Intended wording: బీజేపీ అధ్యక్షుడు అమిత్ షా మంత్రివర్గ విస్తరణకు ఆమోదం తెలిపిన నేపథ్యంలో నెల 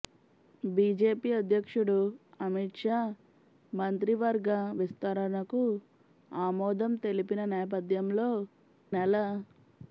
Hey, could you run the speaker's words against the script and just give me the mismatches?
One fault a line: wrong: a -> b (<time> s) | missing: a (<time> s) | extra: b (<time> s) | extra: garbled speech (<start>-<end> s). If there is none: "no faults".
no faults